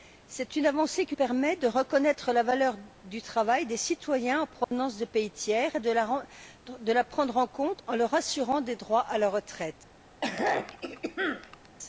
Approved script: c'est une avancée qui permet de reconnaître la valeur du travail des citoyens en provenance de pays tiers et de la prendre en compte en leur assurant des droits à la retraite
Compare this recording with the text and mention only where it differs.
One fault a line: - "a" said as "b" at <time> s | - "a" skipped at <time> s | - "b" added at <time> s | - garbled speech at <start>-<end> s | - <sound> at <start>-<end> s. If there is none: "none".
- dropout at 4.6-4.7 s
- throat clearing at 10.2-11.7 s